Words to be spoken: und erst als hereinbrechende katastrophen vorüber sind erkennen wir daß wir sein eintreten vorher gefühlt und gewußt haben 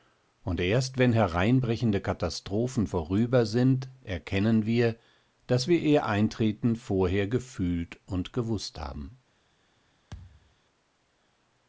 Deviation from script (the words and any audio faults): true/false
true